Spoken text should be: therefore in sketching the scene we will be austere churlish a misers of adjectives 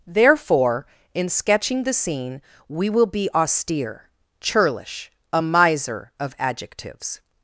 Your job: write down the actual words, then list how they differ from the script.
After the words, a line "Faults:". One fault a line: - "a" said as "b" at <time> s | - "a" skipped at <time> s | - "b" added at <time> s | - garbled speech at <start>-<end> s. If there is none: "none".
therefore in sketching the scene we will be austere churlish a miser of adjectives
Faults:
- "misers" said as "miser" at 5.4 s